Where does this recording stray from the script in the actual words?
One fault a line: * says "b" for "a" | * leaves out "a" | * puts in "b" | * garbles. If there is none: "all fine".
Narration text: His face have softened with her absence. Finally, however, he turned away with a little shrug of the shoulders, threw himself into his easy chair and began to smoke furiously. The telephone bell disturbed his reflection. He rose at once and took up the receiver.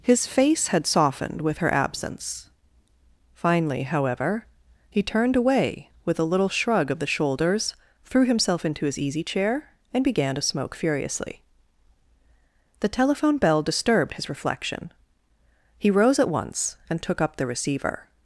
* says "had" for "have"